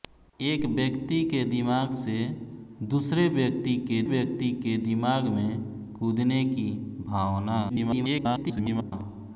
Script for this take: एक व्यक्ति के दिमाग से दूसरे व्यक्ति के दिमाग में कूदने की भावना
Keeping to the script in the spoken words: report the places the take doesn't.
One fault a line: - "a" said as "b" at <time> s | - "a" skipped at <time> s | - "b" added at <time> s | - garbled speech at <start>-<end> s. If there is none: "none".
- "व्यक्ति के" added at 4.0 s
- garbled speech at 7.7-8.9 s